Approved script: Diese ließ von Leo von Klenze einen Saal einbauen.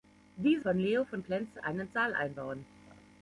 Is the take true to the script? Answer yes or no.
no